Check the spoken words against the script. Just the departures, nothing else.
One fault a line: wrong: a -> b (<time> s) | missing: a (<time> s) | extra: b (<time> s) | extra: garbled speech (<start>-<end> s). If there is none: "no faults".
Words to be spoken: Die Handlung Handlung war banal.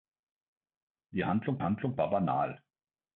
no faults